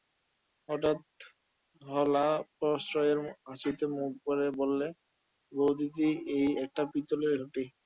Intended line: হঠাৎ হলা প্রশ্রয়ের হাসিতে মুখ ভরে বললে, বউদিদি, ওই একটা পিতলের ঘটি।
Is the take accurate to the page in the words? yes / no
no